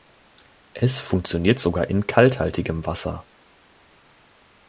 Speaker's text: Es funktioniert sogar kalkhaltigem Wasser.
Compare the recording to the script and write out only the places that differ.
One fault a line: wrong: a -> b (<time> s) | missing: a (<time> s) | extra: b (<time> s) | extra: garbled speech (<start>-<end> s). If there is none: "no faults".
extra: in (1.9 s)